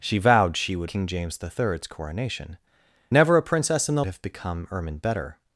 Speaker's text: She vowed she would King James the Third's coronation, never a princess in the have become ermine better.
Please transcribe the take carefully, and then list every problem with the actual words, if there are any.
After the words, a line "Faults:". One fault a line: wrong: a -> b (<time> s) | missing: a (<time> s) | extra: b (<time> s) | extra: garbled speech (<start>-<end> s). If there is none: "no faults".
She vowed she would King James the Third's coronation, never a princess in the have become ermine better.
Faults:
no faults